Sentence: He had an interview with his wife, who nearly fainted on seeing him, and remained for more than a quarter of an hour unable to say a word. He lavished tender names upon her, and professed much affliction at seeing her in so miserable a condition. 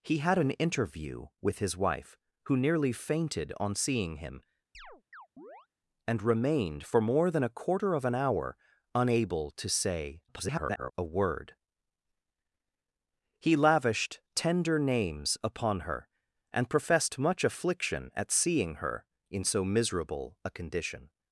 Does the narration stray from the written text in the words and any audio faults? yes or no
yes